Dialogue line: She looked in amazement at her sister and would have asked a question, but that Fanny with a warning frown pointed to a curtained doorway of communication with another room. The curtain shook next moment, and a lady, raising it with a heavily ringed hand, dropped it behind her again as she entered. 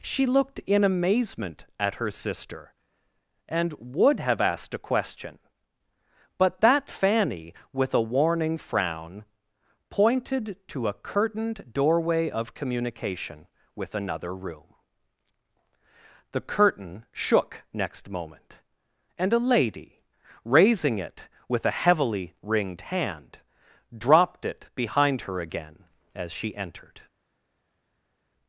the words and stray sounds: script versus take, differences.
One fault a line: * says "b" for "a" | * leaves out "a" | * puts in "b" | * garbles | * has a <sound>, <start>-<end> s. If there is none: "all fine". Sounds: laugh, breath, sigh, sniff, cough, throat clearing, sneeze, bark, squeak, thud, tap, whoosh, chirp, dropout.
all fine